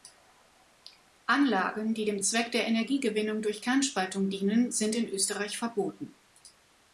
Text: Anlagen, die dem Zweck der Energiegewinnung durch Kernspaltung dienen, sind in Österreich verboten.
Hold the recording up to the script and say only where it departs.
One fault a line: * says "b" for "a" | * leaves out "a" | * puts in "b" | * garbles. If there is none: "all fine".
all fine